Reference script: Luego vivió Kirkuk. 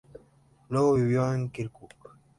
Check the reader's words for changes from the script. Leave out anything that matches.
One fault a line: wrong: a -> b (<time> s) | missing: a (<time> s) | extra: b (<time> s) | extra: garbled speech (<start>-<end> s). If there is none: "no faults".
extra: en (1.3 s)